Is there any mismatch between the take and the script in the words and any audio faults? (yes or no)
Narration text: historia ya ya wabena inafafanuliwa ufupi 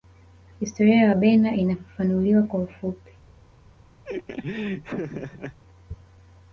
yes